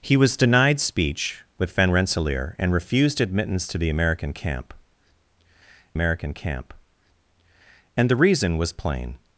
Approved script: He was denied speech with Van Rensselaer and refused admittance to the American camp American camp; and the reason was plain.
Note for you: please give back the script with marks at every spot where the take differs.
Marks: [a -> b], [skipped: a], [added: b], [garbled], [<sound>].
He was denied speech with Van Rensselaer and refused admittance to the American camp American camp; and the reason was plain.